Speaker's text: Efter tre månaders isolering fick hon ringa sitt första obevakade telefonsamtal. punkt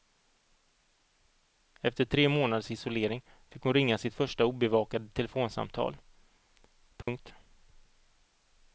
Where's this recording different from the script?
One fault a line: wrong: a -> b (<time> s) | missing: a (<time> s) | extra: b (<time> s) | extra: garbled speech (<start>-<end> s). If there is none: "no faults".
no faults